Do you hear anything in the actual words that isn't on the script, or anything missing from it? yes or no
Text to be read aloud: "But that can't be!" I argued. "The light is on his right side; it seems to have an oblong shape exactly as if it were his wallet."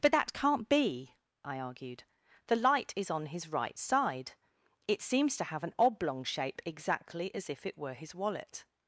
no